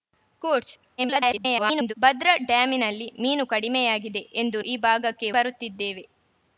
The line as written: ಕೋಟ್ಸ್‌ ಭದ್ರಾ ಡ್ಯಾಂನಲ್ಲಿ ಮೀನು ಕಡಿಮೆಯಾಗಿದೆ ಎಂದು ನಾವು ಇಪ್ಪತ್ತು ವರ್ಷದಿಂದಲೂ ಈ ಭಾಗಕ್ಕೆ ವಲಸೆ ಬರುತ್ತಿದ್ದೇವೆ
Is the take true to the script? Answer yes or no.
no